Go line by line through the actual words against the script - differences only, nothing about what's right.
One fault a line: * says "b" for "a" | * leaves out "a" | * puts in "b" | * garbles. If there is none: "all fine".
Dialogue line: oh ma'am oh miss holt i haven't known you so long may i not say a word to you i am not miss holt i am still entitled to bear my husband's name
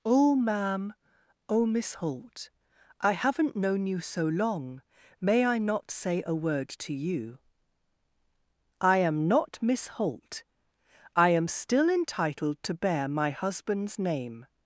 all fine